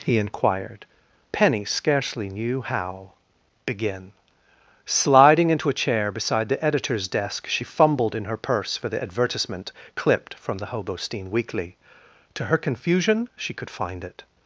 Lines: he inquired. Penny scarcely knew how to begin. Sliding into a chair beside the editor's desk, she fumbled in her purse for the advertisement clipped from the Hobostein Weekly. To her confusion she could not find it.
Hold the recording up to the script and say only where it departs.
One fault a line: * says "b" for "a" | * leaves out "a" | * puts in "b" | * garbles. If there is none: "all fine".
* leaves out "to"
* leaves out "not"